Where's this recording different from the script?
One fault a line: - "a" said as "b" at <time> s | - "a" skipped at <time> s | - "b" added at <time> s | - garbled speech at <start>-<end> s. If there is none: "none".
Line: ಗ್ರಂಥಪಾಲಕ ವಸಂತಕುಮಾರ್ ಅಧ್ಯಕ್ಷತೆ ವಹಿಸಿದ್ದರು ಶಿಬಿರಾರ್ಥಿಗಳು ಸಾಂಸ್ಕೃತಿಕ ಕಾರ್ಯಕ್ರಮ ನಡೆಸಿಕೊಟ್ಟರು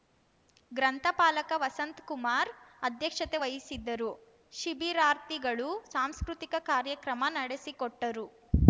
none